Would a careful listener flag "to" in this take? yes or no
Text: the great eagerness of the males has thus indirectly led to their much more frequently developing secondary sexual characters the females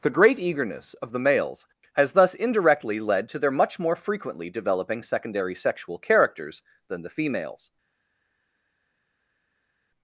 no